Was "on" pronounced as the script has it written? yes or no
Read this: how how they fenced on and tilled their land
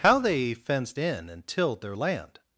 no